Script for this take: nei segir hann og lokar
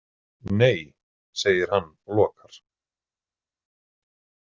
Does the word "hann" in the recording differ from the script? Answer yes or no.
no